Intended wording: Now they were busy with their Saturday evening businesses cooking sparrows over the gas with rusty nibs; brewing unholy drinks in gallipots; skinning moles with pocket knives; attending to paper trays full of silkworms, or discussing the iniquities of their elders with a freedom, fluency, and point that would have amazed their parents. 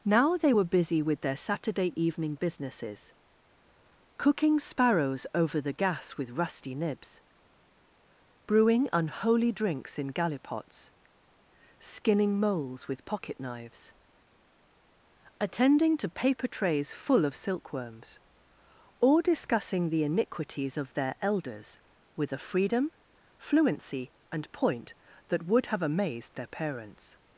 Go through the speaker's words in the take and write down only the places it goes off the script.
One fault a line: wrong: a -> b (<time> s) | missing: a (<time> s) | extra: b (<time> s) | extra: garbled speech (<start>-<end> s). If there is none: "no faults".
no faults